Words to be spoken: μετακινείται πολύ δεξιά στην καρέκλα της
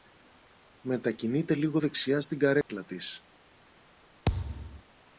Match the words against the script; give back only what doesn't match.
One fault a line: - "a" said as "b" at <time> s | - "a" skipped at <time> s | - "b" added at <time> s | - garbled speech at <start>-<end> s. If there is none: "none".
- "πολύ" said as "λίγο" at 1.6 s